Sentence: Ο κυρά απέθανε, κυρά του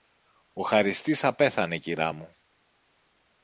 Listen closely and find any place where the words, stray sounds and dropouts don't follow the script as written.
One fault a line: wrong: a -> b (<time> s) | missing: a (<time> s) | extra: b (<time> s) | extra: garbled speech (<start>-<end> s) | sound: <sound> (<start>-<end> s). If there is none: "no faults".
wrong: κυρά -> χαριστής (0.6 s)
wrong: του -> μου (2.1 s)